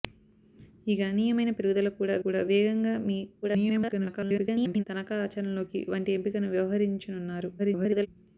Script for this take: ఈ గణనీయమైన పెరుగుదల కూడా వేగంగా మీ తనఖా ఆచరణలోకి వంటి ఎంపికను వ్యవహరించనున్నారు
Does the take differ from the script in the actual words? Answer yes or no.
yes